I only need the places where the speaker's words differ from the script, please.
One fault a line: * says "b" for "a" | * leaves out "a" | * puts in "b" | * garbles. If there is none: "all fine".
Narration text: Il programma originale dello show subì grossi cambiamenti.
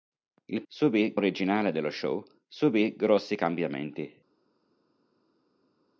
* says "subì" for "programma"